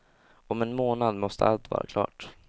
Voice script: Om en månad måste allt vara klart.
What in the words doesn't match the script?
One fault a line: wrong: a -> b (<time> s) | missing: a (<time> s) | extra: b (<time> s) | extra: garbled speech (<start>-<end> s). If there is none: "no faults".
no faults